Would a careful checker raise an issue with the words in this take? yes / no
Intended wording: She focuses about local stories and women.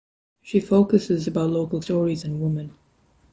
no